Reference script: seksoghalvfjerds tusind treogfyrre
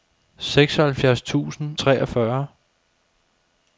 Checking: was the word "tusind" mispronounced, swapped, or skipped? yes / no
no